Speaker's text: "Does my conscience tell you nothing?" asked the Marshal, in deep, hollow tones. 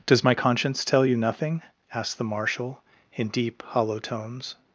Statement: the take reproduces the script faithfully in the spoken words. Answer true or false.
true